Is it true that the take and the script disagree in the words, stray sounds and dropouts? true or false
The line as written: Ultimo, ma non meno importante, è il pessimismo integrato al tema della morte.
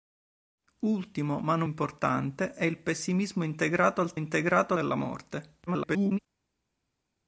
true